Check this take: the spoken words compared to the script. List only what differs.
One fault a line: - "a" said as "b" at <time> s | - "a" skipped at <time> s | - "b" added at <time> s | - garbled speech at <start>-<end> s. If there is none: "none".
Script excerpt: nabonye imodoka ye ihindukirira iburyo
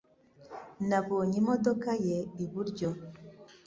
- "ihindukirira" skipped at 2.2 s